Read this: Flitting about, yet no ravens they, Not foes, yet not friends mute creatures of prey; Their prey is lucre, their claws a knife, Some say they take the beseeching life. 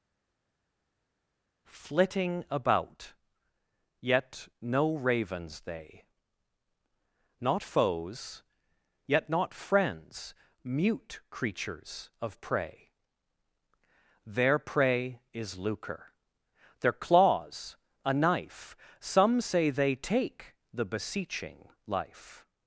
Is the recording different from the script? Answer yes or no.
no